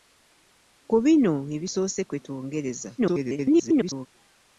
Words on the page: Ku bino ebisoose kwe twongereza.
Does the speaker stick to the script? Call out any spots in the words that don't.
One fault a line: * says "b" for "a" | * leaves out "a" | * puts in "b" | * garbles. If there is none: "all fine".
* garbles